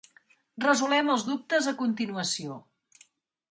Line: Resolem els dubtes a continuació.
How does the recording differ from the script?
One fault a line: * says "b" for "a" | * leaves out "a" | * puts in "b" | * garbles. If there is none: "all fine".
all fine